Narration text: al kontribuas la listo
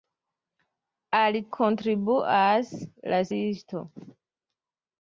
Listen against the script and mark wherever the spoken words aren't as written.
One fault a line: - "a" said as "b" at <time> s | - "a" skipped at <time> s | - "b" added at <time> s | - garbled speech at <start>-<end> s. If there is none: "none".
none